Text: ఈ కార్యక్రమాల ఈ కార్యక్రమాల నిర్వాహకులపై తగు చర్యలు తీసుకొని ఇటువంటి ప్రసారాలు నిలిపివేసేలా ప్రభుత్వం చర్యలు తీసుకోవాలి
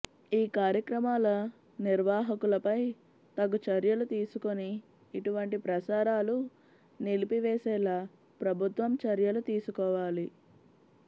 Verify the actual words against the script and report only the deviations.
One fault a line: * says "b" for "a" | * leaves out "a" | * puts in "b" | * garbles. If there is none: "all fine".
* leaves out "ఈ కార్యక్రమాల"